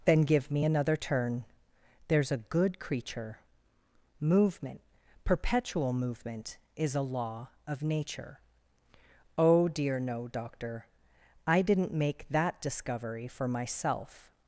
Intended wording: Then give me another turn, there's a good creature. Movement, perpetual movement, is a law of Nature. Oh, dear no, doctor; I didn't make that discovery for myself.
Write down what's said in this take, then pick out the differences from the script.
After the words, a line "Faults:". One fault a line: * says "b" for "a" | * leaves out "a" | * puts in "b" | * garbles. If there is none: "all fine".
Then give me another turn, there's a good creature. Movement, perpetual movement, is a law of Nature. Oh, dear no, doctor; I didn't make that discovery for myself.
Faults:
all fine